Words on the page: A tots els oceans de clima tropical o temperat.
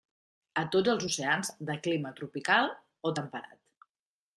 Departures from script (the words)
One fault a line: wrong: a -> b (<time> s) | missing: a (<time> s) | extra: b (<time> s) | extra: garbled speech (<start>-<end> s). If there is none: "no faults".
no faults